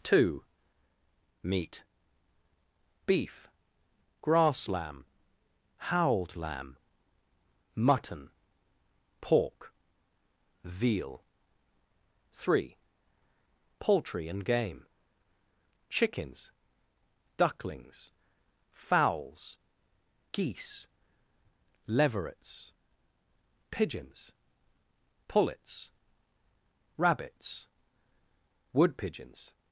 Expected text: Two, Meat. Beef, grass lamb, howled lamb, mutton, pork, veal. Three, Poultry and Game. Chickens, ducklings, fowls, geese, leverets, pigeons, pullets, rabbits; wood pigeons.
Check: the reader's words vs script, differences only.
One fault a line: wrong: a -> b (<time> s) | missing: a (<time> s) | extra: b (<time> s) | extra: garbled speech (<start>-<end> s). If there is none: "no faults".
no faults